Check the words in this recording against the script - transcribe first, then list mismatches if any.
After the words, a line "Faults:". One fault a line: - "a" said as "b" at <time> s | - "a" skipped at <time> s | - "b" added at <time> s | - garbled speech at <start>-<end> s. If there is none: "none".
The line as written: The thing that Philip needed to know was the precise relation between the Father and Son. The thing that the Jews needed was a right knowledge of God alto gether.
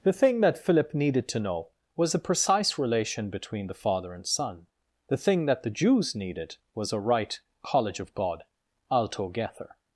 The thing that Philip needed to know was the precise relation between the Father and Son. The thing that the Jews needed was a right college of God alto gether.
Faults:
- "knowledge" said as "college" at 7.6 s